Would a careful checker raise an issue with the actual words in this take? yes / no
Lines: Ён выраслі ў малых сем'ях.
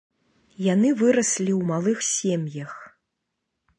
yes